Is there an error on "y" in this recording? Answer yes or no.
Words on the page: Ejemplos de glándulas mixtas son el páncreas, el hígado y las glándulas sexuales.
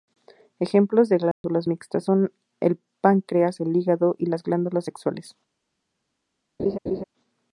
no